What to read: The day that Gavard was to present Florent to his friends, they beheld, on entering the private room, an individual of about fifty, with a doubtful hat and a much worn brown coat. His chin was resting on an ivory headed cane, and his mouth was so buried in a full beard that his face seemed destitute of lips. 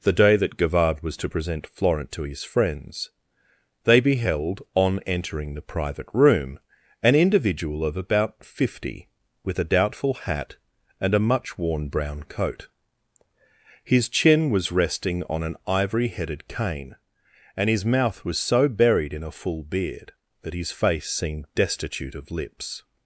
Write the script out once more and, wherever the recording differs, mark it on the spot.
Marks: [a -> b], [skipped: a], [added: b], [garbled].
The day that Gavard was to present Florent to his friends, they beheld, on entering the private room, an individual of about fifty, with a doubtful hat and a much worn brown coat. His chin was resting on an ivory headed cane, and his mouth was so buried in a full beard that his face seemed destitute of lips.